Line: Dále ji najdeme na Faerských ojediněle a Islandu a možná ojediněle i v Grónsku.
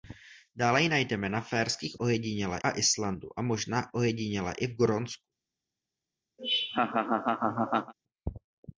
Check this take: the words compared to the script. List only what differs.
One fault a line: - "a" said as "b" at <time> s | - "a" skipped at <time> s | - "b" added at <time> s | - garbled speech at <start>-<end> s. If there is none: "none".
none